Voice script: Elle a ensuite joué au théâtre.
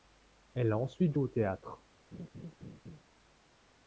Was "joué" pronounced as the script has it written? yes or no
no